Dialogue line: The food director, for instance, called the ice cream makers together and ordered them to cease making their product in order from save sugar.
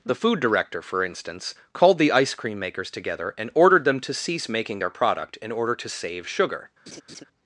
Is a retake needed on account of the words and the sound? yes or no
yes